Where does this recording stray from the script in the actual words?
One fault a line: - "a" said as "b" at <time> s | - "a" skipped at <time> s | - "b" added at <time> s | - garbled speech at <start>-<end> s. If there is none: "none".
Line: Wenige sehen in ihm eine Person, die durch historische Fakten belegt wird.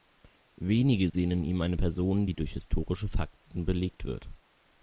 none